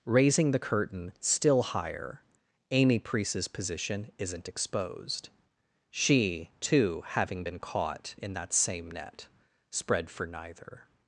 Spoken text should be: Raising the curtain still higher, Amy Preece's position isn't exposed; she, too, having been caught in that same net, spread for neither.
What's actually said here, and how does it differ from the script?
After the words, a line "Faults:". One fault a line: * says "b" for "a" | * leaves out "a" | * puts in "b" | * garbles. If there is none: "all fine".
Raising the curtain still higher, Amy Preece's position isn't exposed; she, too, having been caught in that same net, spread for neither.
Faults:
all fine